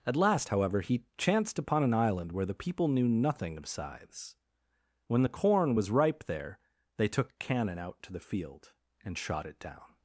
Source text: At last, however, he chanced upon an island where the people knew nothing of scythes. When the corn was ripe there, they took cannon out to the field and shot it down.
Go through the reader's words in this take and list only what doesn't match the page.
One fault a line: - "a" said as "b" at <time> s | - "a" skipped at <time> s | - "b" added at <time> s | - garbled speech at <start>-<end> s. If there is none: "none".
none